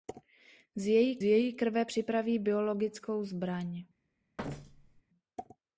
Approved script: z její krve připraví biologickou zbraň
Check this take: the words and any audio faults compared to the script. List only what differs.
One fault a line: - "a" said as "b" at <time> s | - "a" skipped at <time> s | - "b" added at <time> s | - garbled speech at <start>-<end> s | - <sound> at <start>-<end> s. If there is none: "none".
- "její" added at 1.2 s
- thud at 4.4-5.0 s